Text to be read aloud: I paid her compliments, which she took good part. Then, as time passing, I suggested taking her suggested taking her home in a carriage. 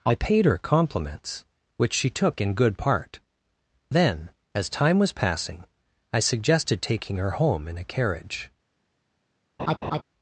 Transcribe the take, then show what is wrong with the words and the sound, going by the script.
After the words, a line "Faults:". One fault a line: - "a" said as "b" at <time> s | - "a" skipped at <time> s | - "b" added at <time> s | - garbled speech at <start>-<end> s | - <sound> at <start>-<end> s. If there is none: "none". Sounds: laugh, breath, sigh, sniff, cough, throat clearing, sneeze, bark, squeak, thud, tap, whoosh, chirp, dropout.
I paid her compliments, which she took in good part. Then, as time was passing, I suggested taking her home in a carriage.
Faults:
- "in" added at 2.4 s
- "was" added at 5.0 s
- "suggested taking her" skipped at 7.3 s
- laugh at 9.6-10.0 s